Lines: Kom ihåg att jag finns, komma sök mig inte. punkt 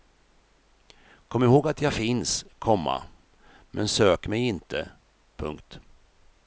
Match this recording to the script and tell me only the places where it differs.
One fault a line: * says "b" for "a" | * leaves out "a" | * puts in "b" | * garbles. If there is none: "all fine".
* puts in "men"